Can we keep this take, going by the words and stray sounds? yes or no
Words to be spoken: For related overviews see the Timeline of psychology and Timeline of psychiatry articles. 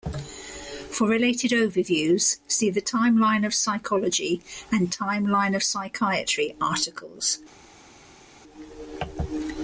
yes